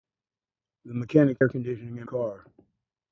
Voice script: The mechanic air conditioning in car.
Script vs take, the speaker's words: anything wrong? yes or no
no